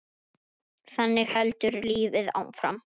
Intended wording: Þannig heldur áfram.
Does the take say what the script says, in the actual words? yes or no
no